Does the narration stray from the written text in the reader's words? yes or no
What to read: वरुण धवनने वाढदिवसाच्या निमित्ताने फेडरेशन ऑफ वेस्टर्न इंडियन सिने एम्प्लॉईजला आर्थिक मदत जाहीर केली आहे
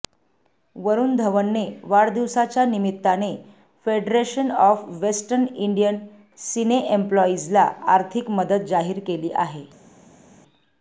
no